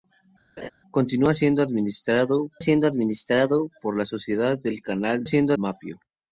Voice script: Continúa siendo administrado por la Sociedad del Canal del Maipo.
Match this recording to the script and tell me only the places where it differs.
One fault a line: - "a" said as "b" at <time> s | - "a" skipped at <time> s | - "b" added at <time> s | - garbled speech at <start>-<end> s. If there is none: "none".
- "siendo administrado" added at 2.6 s
- "del" said as "siendo" at 5.2 s